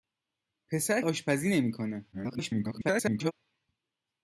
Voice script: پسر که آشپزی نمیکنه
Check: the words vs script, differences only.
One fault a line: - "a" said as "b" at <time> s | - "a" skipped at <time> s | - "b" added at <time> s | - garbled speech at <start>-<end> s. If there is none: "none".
- "که" skipped at 1.0 s
- garbled speech at 2.1-3.3 s